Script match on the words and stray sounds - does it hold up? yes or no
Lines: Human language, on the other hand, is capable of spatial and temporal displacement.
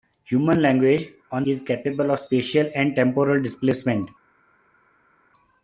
no